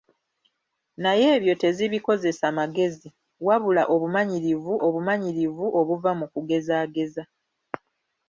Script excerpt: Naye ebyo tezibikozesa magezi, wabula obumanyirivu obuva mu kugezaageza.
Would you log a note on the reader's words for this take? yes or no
yes